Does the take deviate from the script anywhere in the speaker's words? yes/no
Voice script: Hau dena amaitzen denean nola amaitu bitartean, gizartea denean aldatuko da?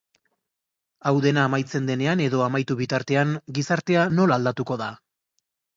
yes